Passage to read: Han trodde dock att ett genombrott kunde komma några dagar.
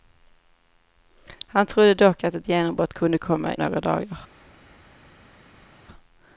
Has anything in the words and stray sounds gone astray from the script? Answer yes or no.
no